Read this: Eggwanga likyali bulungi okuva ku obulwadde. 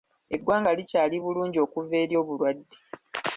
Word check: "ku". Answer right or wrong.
wrong